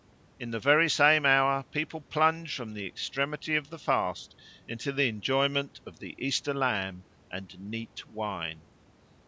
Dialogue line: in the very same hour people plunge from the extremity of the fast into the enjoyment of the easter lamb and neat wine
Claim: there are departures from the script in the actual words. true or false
false